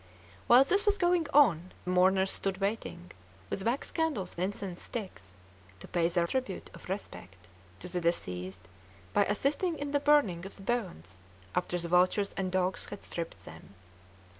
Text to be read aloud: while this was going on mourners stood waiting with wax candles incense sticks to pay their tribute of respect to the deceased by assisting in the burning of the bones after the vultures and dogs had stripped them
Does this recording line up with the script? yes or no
yes